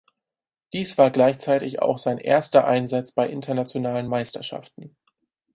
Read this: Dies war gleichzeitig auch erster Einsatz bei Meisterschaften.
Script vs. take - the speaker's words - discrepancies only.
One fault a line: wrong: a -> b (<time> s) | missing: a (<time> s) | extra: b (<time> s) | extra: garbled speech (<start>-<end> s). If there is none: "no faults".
extra: sein (2.0 s)
extra: internationalen (3.3 s)